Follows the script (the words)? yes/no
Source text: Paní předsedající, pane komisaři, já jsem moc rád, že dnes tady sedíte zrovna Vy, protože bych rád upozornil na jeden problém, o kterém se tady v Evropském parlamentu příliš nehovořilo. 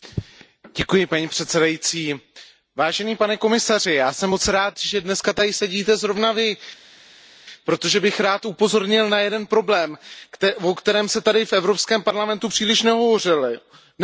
yes